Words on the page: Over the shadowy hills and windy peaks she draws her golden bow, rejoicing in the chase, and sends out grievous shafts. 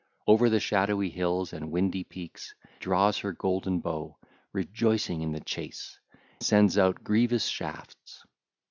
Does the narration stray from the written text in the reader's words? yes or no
yes